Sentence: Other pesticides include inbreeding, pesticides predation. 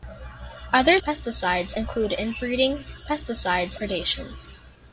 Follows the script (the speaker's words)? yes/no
yes